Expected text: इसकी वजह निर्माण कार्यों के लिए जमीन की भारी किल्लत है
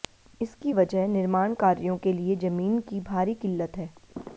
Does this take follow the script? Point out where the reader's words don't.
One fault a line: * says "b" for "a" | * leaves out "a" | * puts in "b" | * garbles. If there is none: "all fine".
all fine